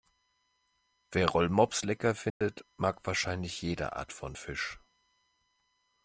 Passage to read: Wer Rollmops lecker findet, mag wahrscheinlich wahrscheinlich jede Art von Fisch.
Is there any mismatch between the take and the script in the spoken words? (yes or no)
yes